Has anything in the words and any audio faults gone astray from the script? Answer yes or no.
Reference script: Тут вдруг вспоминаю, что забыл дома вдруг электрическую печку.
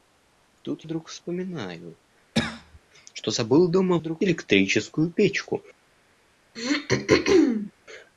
yes